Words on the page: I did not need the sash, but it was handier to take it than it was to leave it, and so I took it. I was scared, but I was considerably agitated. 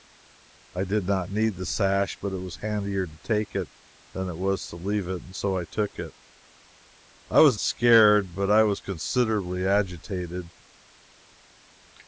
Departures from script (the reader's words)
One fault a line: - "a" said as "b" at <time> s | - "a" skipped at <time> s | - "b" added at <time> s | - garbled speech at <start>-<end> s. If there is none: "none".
none